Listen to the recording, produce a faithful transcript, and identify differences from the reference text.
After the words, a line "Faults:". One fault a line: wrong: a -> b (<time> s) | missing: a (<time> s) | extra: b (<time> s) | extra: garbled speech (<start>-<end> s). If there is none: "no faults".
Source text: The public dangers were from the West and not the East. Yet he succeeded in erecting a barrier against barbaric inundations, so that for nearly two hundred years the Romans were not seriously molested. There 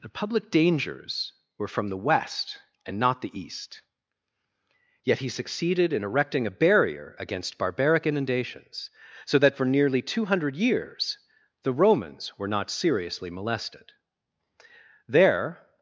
The public dangers were from the West and not the East. Yet he succeeded in erecting a barrier against barbaric inundations, so that for nearly two hundred years the Romans were not seriously molested. There
Faults:
no faults